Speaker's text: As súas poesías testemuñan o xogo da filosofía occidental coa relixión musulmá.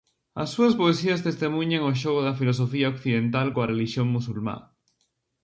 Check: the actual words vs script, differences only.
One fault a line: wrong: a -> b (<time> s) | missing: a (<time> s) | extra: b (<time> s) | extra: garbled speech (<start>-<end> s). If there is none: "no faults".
no faults